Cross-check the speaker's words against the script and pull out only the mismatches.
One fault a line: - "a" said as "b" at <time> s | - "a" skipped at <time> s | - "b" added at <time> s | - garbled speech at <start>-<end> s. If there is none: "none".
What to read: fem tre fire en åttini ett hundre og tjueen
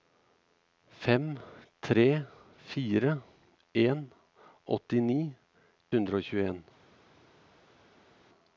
- "ett" skipped at 5.2 s